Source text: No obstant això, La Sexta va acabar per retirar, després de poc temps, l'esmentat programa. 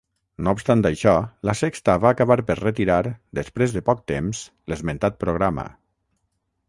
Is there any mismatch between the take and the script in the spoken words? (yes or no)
no